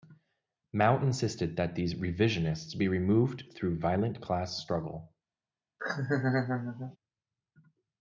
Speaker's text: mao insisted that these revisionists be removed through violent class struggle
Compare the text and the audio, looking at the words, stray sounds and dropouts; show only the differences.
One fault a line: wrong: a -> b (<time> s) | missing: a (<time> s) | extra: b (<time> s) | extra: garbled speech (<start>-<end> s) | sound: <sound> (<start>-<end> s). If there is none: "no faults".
sound: laugh (5.8-7.0 s)